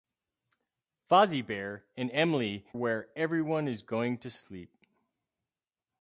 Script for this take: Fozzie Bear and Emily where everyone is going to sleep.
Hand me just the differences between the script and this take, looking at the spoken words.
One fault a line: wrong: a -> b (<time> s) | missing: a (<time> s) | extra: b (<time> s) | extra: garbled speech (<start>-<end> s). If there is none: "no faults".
no faults